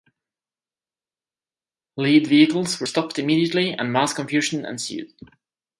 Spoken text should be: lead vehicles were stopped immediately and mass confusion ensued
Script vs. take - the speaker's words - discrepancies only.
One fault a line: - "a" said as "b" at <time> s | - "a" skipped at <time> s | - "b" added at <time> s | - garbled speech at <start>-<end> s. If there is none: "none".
none